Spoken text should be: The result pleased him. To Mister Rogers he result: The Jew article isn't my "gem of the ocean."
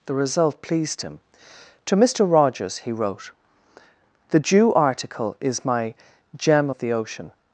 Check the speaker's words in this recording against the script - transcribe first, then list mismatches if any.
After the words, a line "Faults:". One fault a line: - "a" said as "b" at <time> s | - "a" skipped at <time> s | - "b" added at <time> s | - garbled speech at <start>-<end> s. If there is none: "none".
The result pleased him. To Mister Rogers he wrote: The Jew article is my "gem of the ocean."
Faults:
- "result" said as "wrote" at 2.9 s
- "isn't" said as "is" at 5.4 s